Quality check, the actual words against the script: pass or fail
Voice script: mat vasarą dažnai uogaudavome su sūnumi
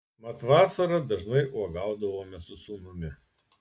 pass